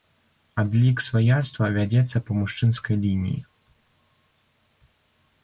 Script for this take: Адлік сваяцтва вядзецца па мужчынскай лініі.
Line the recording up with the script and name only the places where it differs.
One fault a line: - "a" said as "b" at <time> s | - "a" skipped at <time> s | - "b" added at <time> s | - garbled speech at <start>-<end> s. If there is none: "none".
none